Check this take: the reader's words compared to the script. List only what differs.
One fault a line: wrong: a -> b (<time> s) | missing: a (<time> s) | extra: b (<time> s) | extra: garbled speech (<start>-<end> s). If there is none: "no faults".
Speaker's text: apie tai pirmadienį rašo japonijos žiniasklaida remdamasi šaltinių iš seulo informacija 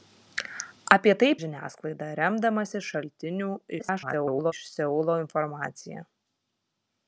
missing: pirmadienį rašo japonijos (1.3 s)
extra: garbled speech (3.8-4.5 s)